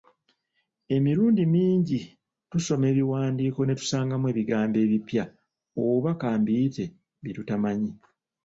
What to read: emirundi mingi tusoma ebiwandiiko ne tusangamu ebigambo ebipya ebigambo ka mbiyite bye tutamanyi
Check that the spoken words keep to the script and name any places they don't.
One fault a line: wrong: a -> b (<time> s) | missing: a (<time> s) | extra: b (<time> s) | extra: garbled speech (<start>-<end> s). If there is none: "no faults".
wrong: ebigambo -> oba (5.8 s)